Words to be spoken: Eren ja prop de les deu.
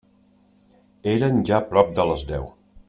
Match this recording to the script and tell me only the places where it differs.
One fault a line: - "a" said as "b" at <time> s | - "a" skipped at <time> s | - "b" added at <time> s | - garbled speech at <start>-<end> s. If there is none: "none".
none